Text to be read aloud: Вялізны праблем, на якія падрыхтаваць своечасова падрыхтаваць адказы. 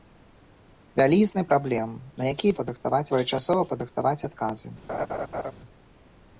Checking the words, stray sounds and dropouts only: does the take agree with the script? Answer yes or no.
no